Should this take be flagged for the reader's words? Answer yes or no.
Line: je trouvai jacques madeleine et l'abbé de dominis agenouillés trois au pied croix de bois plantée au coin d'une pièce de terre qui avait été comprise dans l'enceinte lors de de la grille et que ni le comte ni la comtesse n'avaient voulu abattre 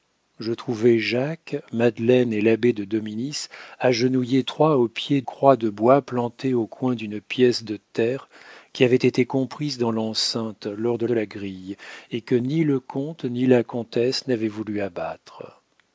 no